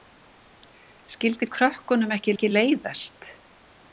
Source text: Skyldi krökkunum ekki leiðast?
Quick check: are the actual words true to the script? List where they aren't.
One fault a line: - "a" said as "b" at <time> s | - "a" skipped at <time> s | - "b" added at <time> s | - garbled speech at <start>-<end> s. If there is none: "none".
- "ekki" added at 2.3 s